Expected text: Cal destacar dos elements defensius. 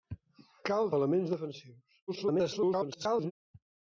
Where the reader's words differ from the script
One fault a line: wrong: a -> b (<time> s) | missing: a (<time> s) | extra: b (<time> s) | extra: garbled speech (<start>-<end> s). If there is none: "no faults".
missing: destacar dos (0.9 s)
extra: garbled speech (2.1-3.3 s)